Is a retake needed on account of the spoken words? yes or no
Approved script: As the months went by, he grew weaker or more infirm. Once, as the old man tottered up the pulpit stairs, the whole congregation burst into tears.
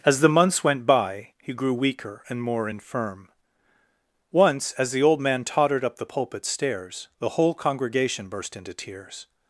yes